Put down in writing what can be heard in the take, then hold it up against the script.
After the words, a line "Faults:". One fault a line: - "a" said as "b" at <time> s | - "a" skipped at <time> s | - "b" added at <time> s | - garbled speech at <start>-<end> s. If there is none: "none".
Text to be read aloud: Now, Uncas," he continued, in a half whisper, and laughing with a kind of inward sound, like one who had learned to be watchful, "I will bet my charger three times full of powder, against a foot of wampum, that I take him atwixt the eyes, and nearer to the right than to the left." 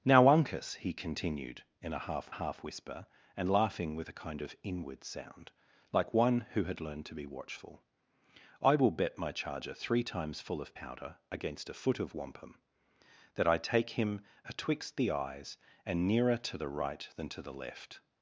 Now, Uncas," he continued, in a half half whisper, and laughing with a kind of inward sound, like one who had learned to be watchful, "I will bet my charger three times full of powder, against a foot of wampum, that I take him atwixt the eyes, and nearer to the right than to the left."
Faults:
- "half" added at 2.3 s